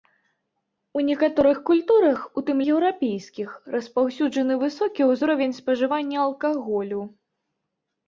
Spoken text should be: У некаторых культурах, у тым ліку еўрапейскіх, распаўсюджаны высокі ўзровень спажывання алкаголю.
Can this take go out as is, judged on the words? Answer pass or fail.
fail